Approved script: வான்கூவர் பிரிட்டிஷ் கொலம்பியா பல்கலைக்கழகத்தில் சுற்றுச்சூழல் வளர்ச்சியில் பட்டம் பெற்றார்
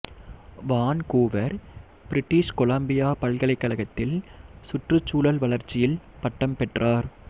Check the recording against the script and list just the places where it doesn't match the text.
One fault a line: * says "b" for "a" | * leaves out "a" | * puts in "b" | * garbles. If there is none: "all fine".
all fine